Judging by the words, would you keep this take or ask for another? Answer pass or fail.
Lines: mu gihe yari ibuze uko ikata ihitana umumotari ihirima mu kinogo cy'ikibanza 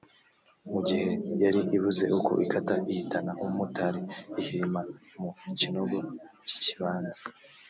pass